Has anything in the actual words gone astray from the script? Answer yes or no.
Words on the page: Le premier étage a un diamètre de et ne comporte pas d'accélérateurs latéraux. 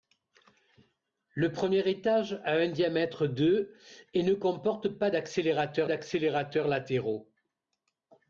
yes